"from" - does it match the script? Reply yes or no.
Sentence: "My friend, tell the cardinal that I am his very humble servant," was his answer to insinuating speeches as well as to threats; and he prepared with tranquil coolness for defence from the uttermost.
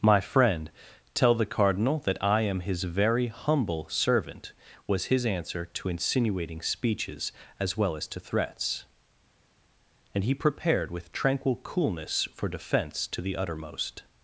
no